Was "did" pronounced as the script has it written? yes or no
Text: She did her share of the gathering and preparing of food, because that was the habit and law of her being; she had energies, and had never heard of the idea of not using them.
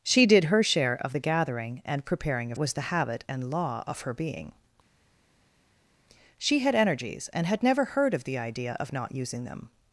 yes